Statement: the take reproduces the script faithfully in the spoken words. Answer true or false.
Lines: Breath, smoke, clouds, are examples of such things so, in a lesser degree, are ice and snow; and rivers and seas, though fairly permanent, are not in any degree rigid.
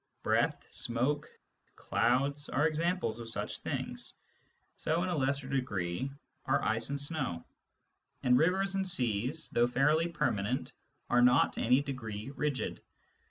false